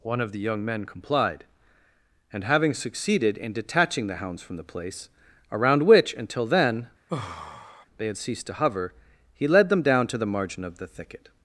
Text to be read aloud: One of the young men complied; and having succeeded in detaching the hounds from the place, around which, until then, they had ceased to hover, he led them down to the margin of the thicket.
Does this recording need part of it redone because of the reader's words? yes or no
no